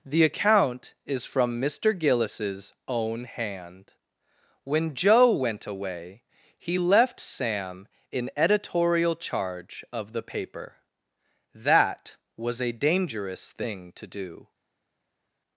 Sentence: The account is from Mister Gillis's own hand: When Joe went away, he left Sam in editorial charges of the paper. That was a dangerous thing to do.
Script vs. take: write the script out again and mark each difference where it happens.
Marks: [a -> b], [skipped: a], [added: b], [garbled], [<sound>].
The account is from Mister Gillis's own hand: When Joe went away, he left Sam in editorial [charges -> charge] of the paper. That was a dangerous thing to do.